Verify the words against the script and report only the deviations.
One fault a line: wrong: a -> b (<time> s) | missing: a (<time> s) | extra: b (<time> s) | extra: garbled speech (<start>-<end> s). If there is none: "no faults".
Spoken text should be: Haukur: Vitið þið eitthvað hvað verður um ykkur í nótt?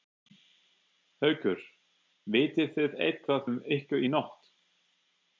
missing: hvað verður (3.5 s)